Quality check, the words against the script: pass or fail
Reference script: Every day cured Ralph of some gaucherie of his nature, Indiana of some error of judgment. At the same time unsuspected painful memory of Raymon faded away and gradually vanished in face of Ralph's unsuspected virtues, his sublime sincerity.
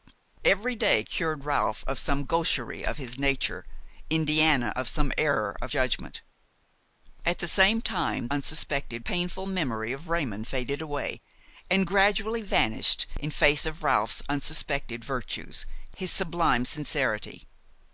pass